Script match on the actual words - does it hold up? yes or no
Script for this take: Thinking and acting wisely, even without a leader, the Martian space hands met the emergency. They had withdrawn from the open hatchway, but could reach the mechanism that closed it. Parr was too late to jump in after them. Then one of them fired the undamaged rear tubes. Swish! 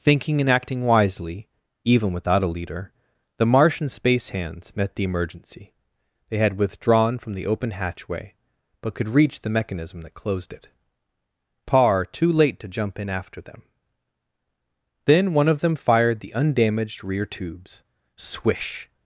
no